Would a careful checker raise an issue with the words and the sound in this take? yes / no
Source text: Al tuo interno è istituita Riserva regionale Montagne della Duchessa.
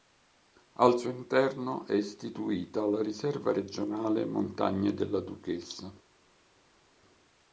yes